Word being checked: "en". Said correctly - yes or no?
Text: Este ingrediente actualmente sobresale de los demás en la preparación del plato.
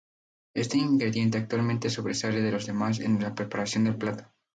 yes